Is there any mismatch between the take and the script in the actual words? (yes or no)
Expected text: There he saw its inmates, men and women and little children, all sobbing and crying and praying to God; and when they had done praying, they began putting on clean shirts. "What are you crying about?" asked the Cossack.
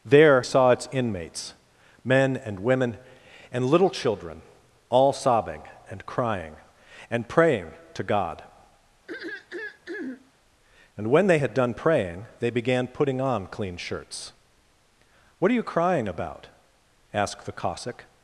yes